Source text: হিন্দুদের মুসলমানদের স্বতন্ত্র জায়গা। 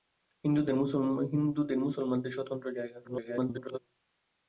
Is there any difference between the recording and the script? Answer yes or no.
yes